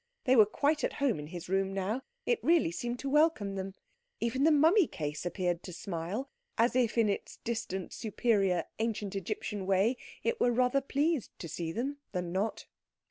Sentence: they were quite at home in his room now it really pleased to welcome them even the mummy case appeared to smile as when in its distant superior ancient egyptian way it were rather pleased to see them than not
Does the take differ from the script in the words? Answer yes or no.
yes